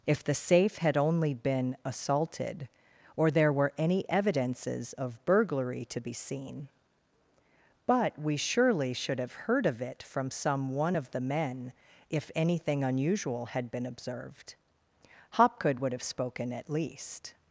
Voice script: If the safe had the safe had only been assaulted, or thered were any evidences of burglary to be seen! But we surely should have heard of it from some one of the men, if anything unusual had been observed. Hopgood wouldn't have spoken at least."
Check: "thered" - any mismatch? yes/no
yes